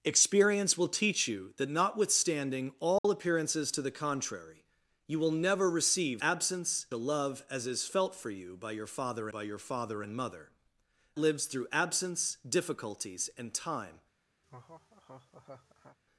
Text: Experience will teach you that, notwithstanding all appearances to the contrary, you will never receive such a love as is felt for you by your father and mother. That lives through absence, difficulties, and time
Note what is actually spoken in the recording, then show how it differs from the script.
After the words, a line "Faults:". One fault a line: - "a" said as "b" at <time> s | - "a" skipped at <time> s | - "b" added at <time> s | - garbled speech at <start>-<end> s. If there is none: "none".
Experience will teach you that, notwithstanding all appearances to the contrary, you will never receive absence a love as is felt for you by your father by your father and mother. Lives through absence, difficulties, and time
Faults:
- "such" said as "absence" at 6.2 s
- "by your father" added at 9.3 s
- "That" skipped at 10.5 s